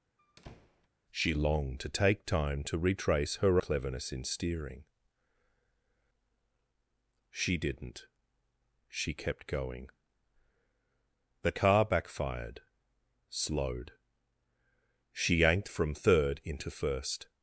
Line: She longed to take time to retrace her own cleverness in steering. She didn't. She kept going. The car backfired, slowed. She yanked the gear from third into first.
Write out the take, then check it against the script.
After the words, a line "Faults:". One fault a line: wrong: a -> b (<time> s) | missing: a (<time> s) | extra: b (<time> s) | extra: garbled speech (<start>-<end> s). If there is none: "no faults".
She longed to take time to retrace her cleverness in steering. She didn't. She kept going. The car backfired, slowed. She yanked from third into first.
Faults:
missing: own (3.6 s)
missing: the gear (15.7 s)